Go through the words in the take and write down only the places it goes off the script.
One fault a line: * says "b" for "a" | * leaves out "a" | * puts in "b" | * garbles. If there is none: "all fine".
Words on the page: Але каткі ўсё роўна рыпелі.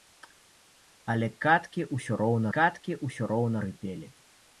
* puts in "каткі ўсё роўна"